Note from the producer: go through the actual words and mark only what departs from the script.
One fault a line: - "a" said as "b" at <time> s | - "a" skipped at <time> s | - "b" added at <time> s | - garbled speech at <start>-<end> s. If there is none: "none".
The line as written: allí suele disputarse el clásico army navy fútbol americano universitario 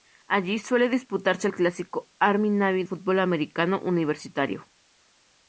none